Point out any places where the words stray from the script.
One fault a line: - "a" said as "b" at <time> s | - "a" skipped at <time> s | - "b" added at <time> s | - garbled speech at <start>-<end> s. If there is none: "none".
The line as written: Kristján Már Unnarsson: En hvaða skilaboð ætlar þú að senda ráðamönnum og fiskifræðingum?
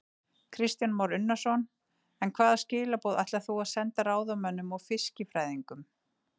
none